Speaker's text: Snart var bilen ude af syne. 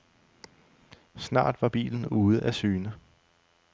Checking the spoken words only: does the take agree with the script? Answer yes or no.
yes